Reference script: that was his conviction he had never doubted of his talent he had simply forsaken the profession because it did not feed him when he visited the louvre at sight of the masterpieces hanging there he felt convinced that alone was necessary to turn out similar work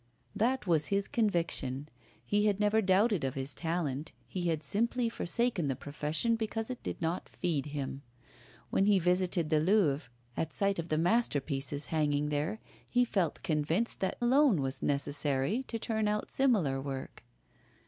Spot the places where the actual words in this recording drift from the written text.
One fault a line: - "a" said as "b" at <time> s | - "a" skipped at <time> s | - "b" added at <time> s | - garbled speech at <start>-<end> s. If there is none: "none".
none